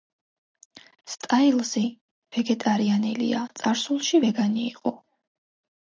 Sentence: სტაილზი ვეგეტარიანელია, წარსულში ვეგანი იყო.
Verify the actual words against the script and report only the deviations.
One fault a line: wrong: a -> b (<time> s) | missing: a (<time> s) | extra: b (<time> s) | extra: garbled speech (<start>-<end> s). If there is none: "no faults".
no faults